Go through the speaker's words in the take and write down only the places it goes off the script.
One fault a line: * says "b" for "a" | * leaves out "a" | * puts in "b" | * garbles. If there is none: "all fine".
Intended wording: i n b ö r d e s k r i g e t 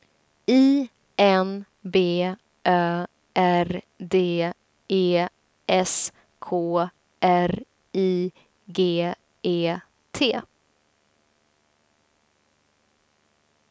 all fine